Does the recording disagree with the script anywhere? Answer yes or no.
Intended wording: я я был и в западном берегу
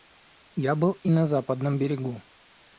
yes